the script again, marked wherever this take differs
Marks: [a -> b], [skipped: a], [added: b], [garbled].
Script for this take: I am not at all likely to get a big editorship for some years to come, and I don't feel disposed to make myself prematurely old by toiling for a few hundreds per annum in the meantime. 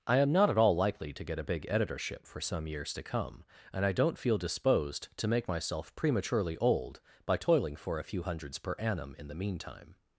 I am not at all likely to get a big editorship for some years to come, and I don't feel disposed to make myself prematurely old by toiling for a few hundreds per annum in the meantime.